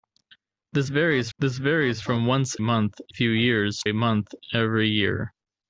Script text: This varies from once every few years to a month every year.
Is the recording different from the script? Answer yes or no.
yes